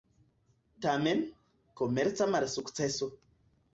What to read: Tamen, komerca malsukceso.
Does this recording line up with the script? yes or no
yes